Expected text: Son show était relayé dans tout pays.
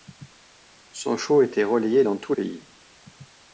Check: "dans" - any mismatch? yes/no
no